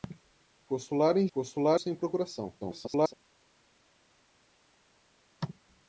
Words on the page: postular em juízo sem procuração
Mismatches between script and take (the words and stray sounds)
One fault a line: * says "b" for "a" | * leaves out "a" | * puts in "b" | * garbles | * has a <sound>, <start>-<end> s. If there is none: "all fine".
* says "postular" for "juízo"
* garbles